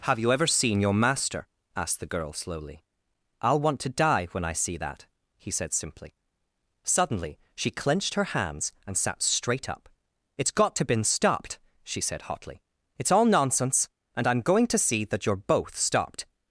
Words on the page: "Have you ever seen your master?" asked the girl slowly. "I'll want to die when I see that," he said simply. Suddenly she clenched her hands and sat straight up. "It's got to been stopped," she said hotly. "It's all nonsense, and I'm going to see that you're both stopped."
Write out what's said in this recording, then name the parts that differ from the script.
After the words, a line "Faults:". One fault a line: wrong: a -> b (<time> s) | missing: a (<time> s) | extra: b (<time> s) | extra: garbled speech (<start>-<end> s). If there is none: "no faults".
"Have you ever seen your master?" asked the girl slowly. "I'll want to die when I see that," he said simply. Suddenly she clenched her hands and sat straight up. "It's got to been stopped," she said hotly. "It's all nonsense, and I'm going to see that you're both stopped."
Faults:
no faults